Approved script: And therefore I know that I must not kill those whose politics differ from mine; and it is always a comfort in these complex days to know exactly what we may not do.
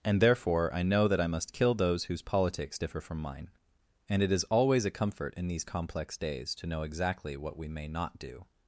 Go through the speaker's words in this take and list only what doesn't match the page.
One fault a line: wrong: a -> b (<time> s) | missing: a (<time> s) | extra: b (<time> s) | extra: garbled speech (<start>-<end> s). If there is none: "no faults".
missing: not (1.5 s)